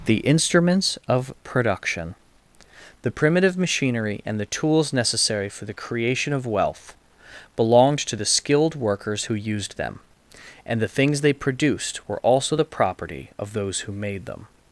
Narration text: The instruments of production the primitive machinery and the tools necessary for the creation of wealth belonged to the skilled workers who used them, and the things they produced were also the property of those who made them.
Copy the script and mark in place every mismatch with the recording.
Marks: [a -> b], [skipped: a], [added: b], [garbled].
The instruments of production the primitive machinery and the tools necessary for the creation of wealth belonged to the skilled workers who used them, and the things they produced were also the property of those who made them.